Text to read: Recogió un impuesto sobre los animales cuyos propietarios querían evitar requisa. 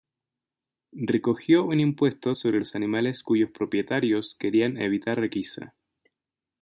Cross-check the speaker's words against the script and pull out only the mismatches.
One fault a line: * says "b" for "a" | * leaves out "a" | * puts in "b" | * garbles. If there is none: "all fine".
all fine